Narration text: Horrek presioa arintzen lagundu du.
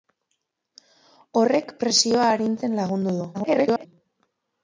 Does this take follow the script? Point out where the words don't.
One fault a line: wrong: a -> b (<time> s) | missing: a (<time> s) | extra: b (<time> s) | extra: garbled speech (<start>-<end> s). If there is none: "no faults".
extra: garbled speech (3.3-3.9 s)